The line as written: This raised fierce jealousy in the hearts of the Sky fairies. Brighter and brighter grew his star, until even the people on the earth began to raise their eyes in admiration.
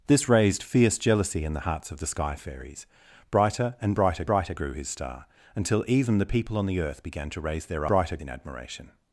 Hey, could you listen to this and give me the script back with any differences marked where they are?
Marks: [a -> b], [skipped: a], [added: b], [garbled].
This raised fierce jealousy in the hearts of the Sky fairies. Brighter and brighter [added: brighter] grew his star, until even the people on the earth began to raise their [eyes -> brighter] in admiration.